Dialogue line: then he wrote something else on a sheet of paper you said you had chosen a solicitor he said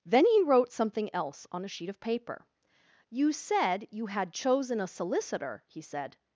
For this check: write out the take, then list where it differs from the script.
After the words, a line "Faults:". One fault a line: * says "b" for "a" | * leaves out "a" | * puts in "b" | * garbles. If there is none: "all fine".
then he wrote something else on a sheet of paper you said you had chosen a solicitor he said
Faults:
all fine